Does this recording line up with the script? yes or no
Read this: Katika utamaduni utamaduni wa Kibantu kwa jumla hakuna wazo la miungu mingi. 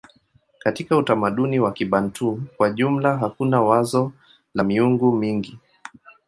no